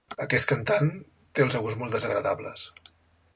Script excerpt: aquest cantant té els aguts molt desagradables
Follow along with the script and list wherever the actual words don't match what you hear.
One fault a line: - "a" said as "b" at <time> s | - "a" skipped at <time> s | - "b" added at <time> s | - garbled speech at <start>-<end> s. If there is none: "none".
none